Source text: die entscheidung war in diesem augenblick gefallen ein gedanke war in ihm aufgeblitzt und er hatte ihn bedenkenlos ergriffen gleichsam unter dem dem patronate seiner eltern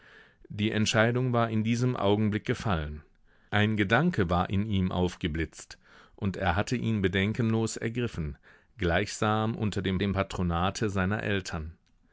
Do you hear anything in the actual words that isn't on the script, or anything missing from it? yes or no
no